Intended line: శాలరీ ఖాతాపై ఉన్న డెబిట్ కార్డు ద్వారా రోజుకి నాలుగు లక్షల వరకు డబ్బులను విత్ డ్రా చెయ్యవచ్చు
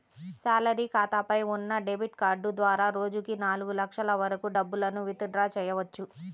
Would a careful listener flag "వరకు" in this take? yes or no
no